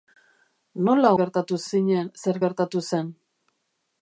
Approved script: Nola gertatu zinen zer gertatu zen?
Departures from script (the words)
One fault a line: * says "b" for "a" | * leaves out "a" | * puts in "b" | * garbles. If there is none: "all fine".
all fine